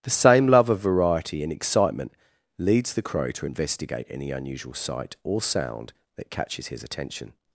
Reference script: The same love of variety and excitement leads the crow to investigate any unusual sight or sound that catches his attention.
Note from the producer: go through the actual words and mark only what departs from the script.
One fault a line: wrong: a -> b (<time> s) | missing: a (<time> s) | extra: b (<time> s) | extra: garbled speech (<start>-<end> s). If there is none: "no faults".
no faults